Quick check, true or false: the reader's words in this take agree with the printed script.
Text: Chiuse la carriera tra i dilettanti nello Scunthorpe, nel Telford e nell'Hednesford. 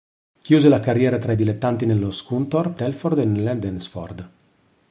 false